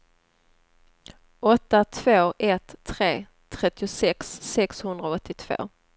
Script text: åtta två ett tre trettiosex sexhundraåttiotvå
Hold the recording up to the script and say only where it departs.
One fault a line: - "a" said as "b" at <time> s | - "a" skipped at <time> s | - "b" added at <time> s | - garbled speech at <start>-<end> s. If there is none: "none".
none